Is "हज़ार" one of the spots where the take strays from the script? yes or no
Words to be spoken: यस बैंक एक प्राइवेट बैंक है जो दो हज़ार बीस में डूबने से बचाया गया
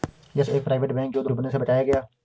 yes